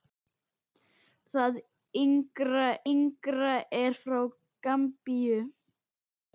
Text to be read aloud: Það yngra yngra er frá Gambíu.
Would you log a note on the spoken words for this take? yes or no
no